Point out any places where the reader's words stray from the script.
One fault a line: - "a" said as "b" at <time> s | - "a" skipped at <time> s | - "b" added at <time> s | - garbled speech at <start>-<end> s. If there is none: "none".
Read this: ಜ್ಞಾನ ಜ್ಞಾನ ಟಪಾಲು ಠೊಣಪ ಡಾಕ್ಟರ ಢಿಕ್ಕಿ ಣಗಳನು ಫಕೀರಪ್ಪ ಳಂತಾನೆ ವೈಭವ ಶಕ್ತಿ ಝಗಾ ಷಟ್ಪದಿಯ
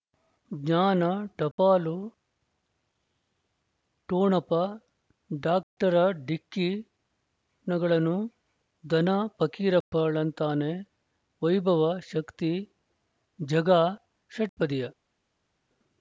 - "ಜ್ಞಾನ" skipped at 1.0 s
- "ಧನ" added at 8.8 s